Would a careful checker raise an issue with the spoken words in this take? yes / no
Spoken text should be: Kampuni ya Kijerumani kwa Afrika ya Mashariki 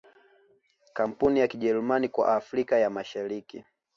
no